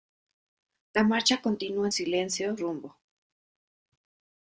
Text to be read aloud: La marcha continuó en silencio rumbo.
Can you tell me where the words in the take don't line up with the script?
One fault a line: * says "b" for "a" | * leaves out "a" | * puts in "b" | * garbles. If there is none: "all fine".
all fine